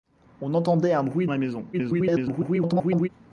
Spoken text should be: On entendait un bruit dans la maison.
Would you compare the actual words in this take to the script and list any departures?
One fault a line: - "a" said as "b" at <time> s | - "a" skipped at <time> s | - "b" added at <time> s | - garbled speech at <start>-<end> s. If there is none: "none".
- "dans" skipped at 1.3 s
- garbled speech at 1.7-3.1 s